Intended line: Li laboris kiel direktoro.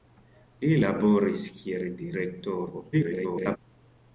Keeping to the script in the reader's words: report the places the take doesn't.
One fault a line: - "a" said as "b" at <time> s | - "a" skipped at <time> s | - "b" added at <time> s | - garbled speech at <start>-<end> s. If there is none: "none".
- garbled speech at 2.9-3.6 s